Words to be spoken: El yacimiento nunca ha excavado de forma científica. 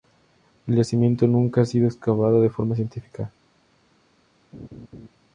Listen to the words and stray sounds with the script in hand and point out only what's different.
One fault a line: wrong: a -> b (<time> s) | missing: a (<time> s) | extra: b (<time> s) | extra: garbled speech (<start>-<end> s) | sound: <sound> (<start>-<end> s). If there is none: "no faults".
extra: sido (1.6 s)
sound: laugh (4.5-5.1 s)